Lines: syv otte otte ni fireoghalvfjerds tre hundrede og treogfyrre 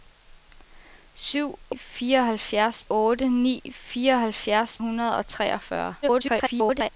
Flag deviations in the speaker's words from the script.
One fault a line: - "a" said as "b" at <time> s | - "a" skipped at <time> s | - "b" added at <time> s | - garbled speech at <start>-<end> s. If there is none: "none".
- "otte" said as "fireoghalvfjerds" at 1.8 s
- "tre" skipped at 4.8 s
- garbled speech at 6.0-6.9 s